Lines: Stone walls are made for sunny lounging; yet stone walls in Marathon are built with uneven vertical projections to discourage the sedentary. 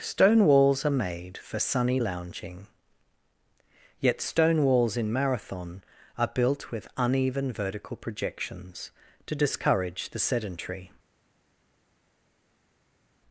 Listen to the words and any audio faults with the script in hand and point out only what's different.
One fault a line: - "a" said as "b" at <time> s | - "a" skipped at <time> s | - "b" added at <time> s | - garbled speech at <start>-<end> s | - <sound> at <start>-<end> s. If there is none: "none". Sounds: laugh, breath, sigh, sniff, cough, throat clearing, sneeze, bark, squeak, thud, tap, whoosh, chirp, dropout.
none